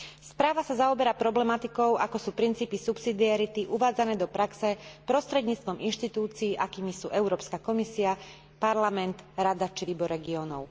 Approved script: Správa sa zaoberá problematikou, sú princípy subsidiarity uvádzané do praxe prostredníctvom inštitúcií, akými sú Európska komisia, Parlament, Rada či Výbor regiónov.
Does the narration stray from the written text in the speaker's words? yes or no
yes